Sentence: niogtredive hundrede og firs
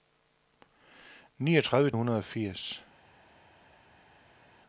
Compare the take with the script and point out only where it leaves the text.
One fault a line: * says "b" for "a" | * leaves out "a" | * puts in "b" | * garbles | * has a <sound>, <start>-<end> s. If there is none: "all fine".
all fine